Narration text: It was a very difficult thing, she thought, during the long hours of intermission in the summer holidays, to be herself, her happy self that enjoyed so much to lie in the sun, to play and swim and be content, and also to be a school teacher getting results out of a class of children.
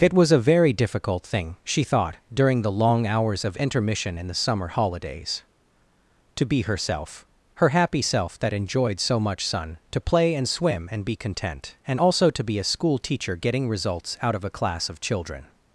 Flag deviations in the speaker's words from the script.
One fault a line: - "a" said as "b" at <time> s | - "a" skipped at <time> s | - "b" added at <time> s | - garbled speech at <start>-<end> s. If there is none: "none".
- "to lie in the" skipped at 9.4 s